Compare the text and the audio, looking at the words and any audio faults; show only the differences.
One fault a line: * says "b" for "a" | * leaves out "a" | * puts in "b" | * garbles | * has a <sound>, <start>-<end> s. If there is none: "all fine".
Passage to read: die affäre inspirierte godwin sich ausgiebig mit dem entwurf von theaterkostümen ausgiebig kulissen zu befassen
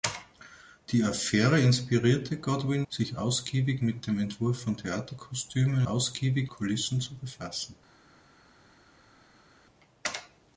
all fine